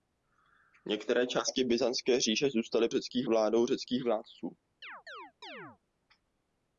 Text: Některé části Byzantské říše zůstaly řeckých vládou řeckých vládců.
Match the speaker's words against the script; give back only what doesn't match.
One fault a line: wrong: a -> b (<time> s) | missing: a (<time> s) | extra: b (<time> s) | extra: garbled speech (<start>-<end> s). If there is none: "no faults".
no faults